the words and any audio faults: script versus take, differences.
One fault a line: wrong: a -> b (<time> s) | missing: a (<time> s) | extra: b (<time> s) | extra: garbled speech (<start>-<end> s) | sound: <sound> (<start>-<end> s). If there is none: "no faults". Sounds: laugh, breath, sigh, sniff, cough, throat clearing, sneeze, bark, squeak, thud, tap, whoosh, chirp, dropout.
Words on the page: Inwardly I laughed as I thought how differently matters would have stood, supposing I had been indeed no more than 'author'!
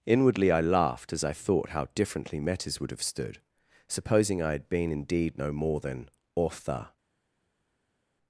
no faults